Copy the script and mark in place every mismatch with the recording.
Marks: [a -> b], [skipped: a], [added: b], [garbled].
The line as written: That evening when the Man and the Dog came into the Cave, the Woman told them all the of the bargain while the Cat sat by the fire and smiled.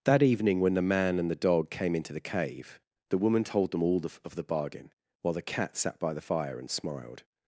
That evening when the Man and the Dog came into the Cave, the Woman told them all the of the bargain while the Cat sat by the fire and smiled.